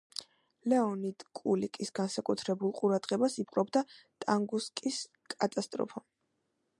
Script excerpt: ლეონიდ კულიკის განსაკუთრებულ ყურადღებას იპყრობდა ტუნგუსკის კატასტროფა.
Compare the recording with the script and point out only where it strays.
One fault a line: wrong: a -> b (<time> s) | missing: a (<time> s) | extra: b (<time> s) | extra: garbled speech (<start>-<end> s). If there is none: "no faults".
no faults